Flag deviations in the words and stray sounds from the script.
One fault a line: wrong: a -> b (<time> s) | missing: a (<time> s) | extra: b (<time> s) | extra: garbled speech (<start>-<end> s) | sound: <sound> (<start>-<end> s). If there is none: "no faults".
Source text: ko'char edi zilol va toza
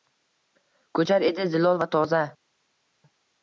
no faults